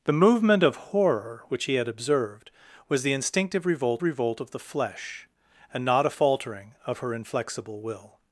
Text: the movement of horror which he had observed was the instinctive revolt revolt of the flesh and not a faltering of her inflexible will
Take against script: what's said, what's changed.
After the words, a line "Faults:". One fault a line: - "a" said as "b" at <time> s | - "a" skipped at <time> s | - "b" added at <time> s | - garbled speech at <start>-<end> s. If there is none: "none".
the movement of horror which he had observed was the instinctive revolt revolt of the flesh and not a faltering of her inflexible will
Faults:
none